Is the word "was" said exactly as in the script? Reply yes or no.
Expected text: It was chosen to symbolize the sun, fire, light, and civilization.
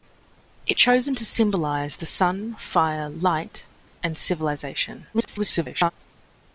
no